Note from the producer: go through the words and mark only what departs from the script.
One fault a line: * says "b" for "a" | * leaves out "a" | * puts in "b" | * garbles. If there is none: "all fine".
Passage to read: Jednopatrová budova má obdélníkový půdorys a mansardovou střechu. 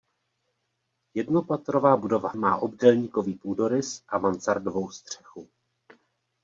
all fine